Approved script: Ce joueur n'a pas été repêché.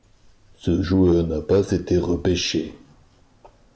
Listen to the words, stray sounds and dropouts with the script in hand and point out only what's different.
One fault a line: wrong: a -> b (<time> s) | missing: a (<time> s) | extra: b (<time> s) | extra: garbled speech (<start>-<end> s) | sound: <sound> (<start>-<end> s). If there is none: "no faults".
no faults